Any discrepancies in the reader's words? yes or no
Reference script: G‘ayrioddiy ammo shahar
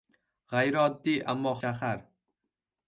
no